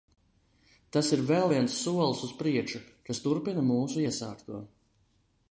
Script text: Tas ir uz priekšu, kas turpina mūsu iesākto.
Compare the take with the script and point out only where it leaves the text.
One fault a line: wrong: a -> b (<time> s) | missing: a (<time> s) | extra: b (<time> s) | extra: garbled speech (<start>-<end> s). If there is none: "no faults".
extra: vēl viens solis (1.3 s)